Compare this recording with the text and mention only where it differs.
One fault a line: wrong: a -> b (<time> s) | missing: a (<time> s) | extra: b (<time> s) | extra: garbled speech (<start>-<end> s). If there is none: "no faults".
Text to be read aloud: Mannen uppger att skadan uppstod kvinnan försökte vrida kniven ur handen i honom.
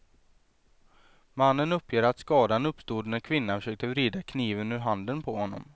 extra: när (3.1 s)
wrong: i -> på (5.2 s)